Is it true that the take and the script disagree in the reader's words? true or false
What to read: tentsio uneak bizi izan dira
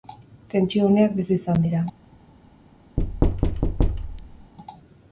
false